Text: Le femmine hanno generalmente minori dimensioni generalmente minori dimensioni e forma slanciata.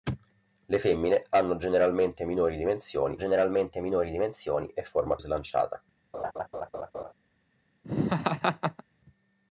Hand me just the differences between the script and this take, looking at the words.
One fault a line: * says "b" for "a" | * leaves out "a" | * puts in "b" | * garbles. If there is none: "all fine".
all fine